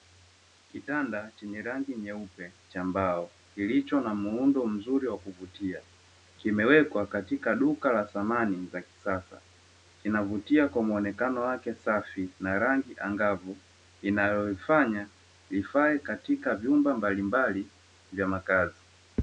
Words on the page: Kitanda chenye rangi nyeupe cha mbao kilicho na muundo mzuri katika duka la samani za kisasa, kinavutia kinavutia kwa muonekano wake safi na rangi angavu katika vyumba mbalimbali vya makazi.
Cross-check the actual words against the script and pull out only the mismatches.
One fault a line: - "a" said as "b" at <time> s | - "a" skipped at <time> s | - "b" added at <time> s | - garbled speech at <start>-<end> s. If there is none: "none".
- "wa kuvutia kimewekwa" added at 5.1 s
- "kinavutia" skipped at 10.7 s
- "inayoifanya ifae" added at 14.0 s